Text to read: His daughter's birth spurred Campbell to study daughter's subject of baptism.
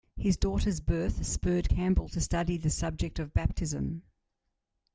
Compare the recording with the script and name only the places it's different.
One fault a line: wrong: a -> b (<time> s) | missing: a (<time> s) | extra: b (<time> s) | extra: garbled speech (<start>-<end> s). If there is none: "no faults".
wrong: daughter's -> the (2.6 s)